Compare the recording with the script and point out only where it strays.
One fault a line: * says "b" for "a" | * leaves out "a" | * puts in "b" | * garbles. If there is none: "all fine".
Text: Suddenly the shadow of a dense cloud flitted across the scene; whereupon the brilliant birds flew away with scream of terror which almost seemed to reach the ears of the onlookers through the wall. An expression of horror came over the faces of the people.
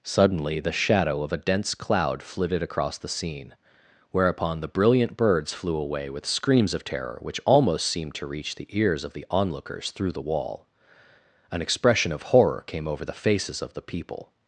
* says "screams" for "scream"